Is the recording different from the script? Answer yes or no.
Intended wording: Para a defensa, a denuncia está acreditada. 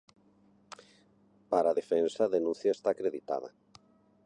no